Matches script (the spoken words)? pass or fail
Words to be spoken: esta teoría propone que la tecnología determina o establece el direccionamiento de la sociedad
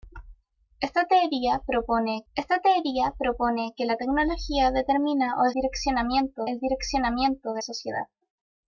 fail